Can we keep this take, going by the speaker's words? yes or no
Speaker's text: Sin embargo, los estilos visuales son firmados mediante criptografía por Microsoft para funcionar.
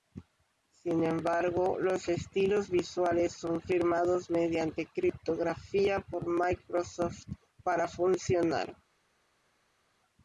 yes